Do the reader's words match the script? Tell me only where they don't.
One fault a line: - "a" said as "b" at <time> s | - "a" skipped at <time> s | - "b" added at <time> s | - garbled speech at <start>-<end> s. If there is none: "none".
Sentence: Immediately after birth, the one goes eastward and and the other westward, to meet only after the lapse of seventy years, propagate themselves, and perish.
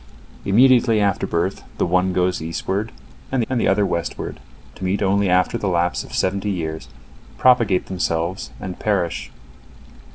none